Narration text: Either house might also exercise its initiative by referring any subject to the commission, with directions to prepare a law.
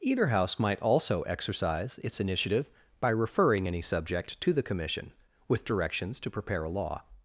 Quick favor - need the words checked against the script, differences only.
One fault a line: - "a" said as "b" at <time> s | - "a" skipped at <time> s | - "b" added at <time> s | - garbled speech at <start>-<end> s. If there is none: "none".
none